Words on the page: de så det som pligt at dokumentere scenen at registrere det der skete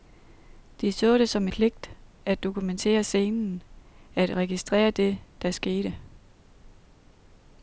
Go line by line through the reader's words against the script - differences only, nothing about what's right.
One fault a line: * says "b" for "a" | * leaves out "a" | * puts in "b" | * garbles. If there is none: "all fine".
all fine